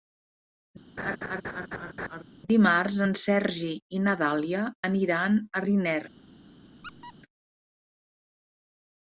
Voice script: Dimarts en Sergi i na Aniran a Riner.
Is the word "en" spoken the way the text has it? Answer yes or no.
yes